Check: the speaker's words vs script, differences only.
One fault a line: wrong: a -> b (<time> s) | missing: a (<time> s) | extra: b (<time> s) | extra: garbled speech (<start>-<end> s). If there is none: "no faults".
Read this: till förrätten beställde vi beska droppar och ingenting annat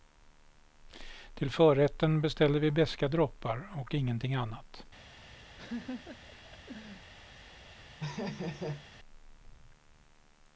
no faults